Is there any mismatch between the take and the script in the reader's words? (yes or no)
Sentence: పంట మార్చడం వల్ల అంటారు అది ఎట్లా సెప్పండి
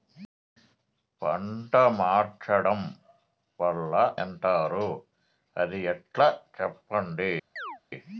no